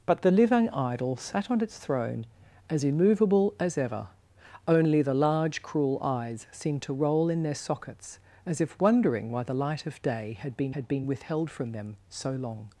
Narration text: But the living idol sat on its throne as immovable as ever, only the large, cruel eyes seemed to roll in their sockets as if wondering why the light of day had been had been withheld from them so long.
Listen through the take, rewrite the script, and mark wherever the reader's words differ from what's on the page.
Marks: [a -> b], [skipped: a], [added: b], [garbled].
But the living idol sat on its throne as immovable as ever, only the large, cruel eyes seemed to roll in their sockets as if wondering why the light of day had been had been withheld from them so long.